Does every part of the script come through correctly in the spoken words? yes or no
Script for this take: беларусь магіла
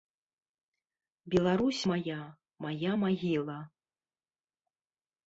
no